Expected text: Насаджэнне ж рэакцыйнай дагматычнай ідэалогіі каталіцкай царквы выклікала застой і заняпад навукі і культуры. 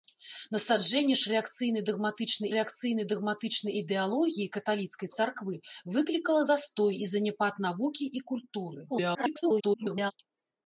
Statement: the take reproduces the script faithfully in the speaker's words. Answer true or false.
false